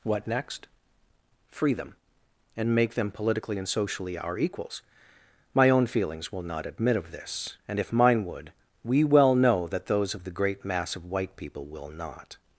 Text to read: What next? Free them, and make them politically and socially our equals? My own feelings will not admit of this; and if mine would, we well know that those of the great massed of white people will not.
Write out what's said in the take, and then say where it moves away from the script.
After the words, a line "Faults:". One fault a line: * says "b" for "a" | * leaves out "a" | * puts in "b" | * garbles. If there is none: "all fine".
What next? Free them, and make them politically and socially our equals? My own feelings will not admit of this; and if mine would, we well know that those of the great mass of white people will not.
Faults:
* says "mass" for "massed"